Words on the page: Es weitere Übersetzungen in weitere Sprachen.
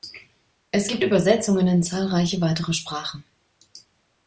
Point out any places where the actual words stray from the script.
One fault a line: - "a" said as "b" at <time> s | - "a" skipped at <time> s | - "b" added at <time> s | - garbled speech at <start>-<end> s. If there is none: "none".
- "weitere" said as "gibt" at 0.8 s
- "zahlreiche" added at 1.8 s